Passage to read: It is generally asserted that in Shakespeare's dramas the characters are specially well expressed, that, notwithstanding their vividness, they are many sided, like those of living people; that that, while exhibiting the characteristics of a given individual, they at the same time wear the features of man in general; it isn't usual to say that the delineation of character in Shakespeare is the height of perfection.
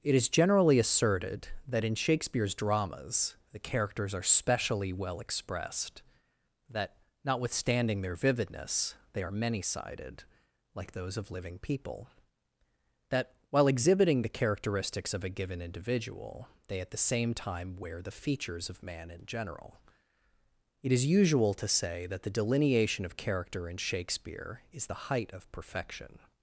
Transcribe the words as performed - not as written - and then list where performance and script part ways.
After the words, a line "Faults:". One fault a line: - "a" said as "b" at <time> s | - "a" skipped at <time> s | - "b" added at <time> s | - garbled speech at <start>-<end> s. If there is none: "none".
It is generally asserted that in Shakespeare's dramas the characters are specially well expressed, that, notwithstanding their vividness, they are many sided, like those of living people; that, while exhibiting the characteristics of a given individual, they at the same time wear the features of man in general; it is usual to say that the delineation of character in Shakespeare is the height of perfection.
Faults:
- "that" skipped at 13.3 s
- "isn't" said as "is" at 20.9 s